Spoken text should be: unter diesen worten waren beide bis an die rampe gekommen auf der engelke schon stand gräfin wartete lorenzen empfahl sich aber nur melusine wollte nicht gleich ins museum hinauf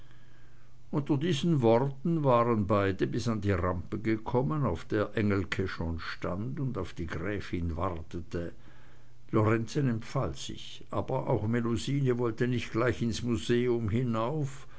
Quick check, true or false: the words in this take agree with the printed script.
false